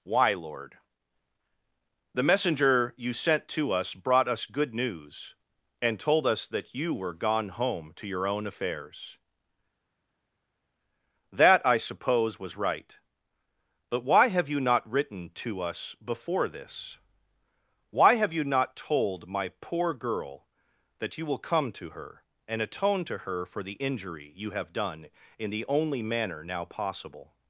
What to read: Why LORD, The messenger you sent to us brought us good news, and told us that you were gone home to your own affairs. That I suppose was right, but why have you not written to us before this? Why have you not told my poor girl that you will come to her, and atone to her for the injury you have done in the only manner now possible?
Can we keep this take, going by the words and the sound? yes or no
yes